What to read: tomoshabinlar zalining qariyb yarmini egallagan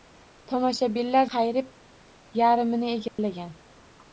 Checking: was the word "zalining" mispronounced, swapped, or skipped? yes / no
yes